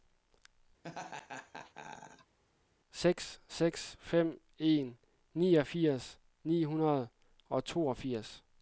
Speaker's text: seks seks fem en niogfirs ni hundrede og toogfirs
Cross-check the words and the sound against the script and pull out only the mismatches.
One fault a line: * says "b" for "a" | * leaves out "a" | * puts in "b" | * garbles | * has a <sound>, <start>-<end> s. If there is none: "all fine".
* has a laugh, 0.8-2.4 s